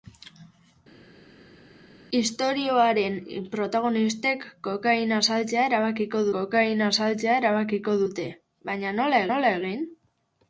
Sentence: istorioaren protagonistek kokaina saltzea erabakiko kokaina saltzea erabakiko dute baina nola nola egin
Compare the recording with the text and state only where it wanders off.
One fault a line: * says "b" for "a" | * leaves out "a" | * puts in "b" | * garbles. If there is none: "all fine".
all fine